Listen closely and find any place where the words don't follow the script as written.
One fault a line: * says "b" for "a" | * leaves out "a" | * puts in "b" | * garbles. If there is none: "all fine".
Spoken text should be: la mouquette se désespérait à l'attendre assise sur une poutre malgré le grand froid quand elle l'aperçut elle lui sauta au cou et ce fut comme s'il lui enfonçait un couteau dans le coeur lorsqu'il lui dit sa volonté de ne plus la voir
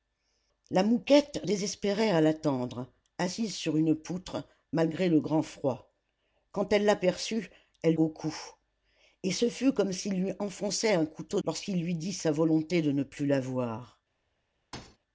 * leaves out "se"
* leaves out "lui sauta"
* leaves out "dans le coeur"